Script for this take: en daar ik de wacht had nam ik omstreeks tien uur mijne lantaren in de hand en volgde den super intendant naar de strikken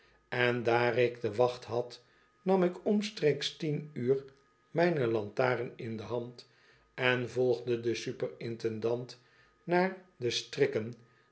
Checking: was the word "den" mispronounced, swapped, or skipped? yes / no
no